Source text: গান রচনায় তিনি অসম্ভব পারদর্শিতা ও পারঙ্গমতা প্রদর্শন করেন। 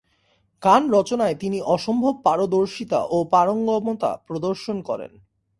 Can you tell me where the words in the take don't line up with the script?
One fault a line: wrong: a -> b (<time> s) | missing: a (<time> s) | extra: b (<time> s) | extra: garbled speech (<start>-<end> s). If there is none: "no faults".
no faults